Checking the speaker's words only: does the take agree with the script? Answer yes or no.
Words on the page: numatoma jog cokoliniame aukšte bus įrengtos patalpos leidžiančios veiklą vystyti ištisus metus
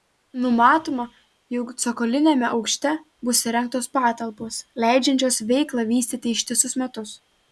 yes